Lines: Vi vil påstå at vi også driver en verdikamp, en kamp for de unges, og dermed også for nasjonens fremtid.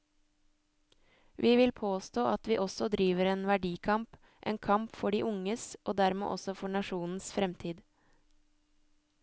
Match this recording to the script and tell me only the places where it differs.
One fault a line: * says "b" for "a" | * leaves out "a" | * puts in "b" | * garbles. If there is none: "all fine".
all fine